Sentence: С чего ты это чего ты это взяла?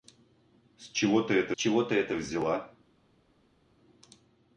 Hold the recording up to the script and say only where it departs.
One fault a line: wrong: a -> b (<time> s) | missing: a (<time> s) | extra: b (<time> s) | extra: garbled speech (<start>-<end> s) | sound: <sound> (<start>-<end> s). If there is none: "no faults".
no faults